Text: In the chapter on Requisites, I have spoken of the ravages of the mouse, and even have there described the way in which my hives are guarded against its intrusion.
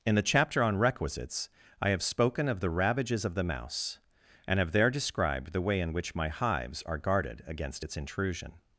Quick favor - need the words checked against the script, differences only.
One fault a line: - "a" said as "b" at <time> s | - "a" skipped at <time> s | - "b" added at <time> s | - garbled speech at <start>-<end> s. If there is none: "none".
- "even" skipped at 4.6 s